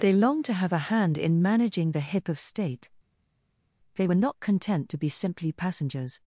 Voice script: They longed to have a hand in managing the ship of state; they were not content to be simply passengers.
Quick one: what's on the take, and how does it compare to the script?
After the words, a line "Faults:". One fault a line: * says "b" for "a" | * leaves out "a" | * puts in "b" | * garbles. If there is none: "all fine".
They longed to have a hand in managing the hip of state; they were not content to be simply passengers.
Faults:
* says "hip" for "ship"